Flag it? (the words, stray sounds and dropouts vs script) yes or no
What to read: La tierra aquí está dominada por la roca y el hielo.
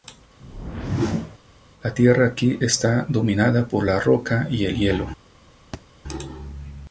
yes